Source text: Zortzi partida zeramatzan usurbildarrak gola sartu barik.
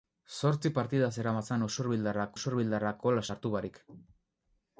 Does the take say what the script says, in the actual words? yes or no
no